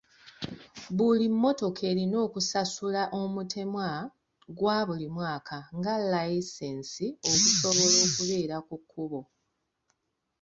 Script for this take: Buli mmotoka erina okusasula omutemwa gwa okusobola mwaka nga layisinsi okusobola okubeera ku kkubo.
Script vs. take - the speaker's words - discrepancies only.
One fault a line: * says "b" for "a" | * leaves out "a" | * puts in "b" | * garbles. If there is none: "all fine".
* says "buli" for "okusobola"